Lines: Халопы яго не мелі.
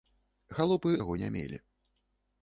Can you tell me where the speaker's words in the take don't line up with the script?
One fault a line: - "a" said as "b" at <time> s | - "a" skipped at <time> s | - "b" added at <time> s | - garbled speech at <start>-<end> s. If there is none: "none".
none